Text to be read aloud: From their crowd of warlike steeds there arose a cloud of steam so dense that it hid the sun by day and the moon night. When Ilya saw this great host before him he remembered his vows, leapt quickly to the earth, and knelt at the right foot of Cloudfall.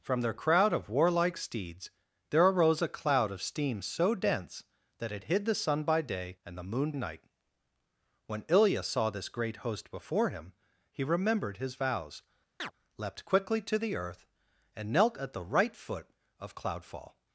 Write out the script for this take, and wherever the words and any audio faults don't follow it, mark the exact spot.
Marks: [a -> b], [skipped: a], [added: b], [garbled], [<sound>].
From their crowd of warlike steeds there arose a cloud of steam so dense that it hid the sun by day and the moon night. When Ilya saw this great host before him he remembered his vows, [chirp] leapt quickly to the earth, and knelt at the right foot of Cloudfall.